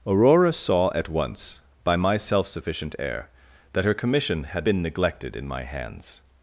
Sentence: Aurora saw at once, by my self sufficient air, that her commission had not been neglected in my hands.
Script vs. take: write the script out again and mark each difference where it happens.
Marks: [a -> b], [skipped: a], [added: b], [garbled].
Aurora saw at once, by my self sufficient air, that her commission had [skipped: not] been neglected in my hands.